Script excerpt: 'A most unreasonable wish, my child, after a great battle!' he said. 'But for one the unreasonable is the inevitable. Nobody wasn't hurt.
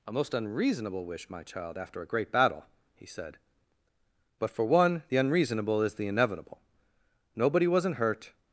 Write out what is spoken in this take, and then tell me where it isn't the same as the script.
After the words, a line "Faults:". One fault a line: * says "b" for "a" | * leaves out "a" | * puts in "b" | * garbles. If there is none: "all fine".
'A most unreasonable wish, my child, after a great battle!' he said. 'But for one the unreasonable is the inevitable. Nobody wasn't hurt.
Faults:
all fine